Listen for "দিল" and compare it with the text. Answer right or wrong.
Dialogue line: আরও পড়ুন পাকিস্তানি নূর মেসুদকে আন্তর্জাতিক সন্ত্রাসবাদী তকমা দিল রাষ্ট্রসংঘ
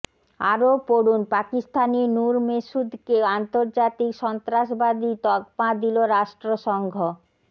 right